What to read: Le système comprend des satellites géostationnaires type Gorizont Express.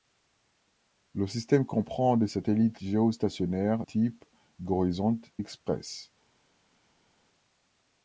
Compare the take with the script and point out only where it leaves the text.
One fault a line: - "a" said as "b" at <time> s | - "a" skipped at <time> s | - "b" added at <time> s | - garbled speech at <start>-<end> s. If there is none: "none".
none